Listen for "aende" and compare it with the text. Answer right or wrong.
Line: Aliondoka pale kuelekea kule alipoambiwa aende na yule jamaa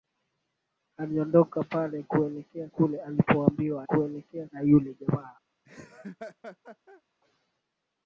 wrong